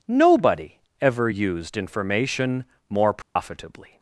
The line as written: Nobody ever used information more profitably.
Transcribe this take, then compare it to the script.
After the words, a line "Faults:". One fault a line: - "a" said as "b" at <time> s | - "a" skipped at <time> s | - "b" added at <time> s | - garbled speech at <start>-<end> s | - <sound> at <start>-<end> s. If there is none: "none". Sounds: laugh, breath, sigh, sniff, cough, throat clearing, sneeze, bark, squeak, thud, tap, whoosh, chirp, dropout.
Nobody ever used information more profitably.
Faults:
- dropout at 3.2-3.4 s